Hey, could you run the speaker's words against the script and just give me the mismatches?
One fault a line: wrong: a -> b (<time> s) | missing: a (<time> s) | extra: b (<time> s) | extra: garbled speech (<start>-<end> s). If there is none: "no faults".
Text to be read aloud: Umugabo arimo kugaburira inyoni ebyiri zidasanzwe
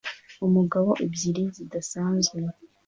missing: arimo kugaburira inyoni (0.9 s)